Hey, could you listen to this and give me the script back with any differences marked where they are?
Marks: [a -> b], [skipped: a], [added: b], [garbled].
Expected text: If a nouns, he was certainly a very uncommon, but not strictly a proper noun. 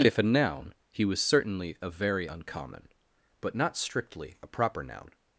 If a [nouns, -> noun] he was certainly a very uncommon, but not strictly a proper noun.